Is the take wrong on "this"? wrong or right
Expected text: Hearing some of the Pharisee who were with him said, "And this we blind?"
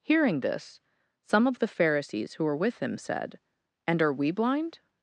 wrong